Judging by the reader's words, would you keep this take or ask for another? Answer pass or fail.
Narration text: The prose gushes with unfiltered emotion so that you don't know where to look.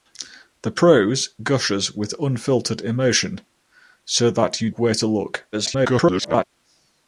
fail